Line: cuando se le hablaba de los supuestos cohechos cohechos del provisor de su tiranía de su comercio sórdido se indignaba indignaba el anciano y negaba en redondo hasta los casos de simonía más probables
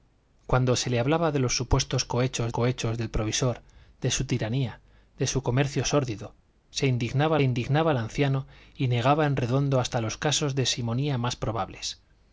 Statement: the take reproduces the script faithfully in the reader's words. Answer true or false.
true